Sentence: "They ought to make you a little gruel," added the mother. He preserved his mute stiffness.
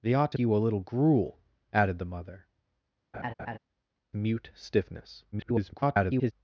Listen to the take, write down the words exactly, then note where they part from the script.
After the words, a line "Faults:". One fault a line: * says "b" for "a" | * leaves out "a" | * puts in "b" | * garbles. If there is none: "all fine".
"They ought to you a little gruel," added the mother. Mute stiffness. [garbled]
Faults:
* leaves out "make"
* leaves out "He preserved his"
* garbles